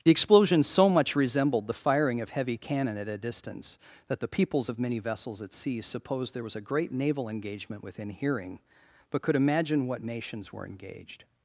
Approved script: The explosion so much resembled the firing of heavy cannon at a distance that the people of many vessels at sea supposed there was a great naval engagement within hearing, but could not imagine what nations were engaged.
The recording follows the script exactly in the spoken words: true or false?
false